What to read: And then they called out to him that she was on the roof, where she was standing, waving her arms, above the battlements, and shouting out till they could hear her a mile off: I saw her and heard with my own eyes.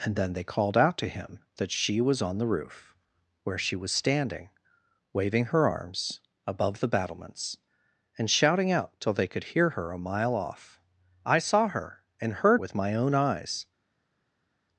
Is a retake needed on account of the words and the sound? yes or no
no